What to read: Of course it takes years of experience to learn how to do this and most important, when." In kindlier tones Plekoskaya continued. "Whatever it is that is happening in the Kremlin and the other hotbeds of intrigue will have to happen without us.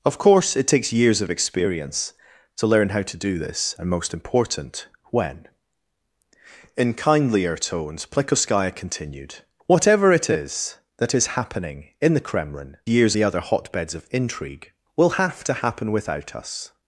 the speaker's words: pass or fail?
fail